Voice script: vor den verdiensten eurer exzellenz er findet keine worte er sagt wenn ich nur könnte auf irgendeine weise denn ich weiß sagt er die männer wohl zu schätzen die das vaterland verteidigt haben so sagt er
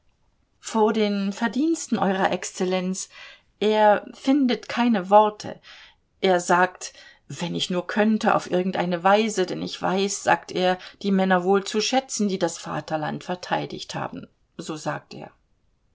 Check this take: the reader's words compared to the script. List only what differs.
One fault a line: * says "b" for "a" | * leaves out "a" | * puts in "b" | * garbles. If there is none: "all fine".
all fine